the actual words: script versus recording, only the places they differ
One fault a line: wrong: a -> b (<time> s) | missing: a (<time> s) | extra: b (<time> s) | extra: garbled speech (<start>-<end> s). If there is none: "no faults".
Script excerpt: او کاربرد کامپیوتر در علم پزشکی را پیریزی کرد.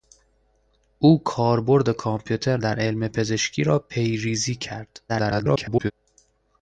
extra: garbled speech (5.1-5.9 s)